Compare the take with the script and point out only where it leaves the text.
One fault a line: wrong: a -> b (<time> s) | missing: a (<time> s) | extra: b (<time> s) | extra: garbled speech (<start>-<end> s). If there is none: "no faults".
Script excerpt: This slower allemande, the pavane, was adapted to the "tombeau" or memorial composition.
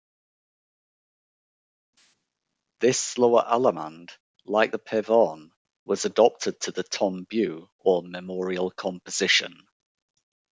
extra: like (4.5 s)